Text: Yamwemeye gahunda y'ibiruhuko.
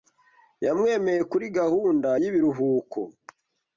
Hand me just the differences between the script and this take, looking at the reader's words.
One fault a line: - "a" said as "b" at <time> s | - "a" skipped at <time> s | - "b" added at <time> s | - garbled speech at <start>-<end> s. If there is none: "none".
- "kuri" added at 1.3 s